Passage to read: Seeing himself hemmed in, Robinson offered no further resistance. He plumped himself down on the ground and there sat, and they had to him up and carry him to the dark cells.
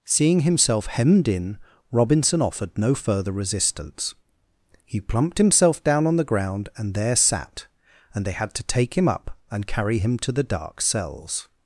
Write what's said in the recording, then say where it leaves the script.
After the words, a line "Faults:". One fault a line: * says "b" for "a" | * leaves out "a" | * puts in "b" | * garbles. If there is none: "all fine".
Seeing himself hemmed in, Robinson offered no further resistance. He plumped himself down on the ground and there sat, and they had to take him up and carry him to the dark cells.
Faults:
* puts in "take"